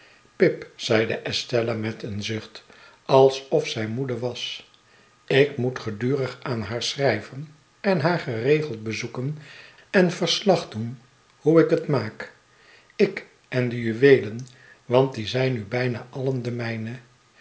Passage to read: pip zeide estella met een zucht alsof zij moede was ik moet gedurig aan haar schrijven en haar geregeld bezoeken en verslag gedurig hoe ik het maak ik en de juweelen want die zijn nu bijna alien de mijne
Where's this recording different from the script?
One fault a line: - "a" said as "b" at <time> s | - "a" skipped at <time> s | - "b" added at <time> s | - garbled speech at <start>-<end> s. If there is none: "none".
- "gedurig" said as "doen" at 10.7 s